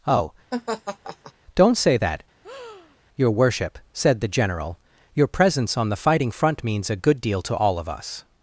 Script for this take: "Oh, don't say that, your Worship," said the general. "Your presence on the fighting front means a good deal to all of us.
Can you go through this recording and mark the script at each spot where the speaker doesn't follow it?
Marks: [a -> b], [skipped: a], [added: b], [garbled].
"Oh, don't say that, your Worship," said the general. "Your presence on the fighting front means a good deal to all of us.